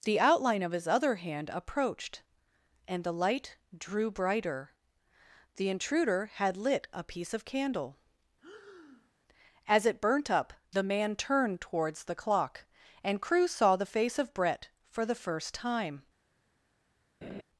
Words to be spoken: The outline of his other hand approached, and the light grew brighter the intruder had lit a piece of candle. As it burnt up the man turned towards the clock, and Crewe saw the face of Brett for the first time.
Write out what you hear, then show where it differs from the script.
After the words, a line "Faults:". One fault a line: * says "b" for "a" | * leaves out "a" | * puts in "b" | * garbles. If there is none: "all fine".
The outline of his other hand approached, and the light drew brighter the intruder had lit a piece of candle. As it burnt up the man turned towards the clock, and Crewe saw the face of Brett for the first time.
Faults:
* says "drew" for "grew"